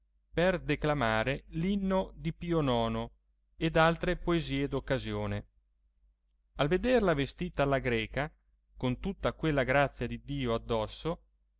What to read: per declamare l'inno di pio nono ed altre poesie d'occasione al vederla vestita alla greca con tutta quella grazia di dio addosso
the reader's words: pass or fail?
pass